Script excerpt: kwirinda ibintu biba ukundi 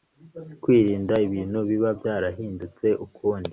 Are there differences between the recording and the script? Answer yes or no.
yes